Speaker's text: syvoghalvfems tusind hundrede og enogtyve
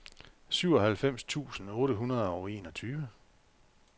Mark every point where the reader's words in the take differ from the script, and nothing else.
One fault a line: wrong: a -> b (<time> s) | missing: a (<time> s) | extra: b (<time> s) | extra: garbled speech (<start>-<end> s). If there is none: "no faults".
extra: otte (1.7 s)